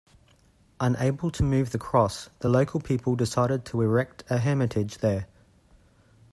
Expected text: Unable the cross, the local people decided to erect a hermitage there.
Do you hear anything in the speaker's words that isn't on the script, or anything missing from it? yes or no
yes